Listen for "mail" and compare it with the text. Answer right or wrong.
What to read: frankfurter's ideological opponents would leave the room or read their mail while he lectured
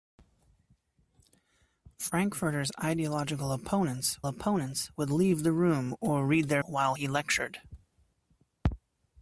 wrong